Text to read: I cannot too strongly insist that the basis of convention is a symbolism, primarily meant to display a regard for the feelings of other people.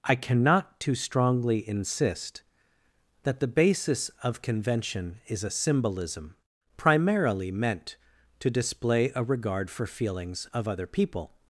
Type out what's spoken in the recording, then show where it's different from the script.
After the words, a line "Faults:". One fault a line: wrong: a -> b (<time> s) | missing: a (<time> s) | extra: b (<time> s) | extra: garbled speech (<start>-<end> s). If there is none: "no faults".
I cannot too strongly insist that the basis of convention is a symbolism, primarily meant to display a regard for feelings of other people.
Faults:
missing: the (9.8 s)